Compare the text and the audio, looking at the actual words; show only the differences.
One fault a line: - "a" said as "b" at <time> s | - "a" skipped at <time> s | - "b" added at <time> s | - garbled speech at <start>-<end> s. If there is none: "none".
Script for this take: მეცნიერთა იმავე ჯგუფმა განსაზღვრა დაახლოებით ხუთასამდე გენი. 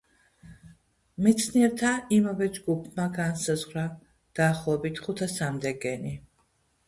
none